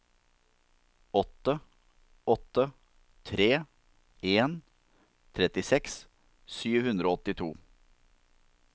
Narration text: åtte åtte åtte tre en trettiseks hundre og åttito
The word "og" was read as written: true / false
true